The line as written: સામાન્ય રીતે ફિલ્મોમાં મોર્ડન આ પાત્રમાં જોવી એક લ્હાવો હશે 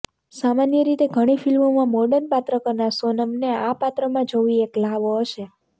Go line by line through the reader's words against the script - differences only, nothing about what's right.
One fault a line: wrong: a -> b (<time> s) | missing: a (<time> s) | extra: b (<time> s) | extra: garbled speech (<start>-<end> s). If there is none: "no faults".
extra: ઘણી (1.1 s)
extra: પાત્ર કરનાર સોનમને (2.3 s)